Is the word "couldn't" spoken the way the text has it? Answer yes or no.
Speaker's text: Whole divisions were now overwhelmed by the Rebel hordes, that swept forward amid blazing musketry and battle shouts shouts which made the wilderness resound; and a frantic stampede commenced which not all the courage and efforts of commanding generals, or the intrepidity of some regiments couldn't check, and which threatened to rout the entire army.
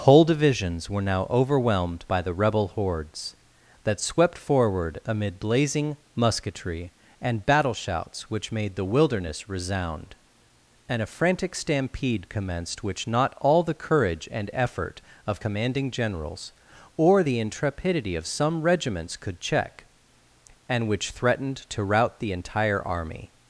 no